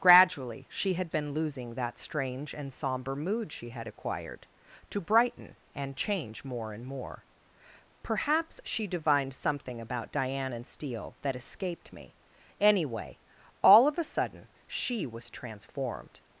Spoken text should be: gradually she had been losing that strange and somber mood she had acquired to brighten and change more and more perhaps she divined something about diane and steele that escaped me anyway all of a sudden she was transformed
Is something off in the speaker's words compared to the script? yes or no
no